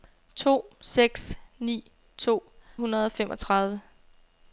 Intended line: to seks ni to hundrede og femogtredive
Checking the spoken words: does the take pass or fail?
pass